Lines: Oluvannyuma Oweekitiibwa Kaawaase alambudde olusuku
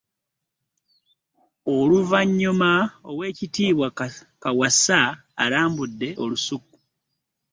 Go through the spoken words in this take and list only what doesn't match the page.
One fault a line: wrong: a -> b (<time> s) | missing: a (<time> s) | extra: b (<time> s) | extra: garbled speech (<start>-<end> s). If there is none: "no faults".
no faults